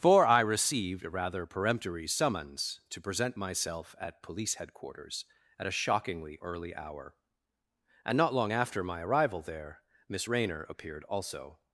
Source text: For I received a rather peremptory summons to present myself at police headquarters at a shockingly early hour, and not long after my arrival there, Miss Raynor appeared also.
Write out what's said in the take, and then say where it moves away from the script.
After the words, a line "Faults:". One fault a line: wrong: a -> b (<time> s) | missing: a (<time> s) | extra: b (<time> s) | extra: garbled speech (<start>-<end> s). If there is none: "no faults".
For I received a rather peremptory summons to present myself at police headquarters at a shockingly early hour, and not long after my arrival there, Miss Raynor appeared also.
Faults:
no faults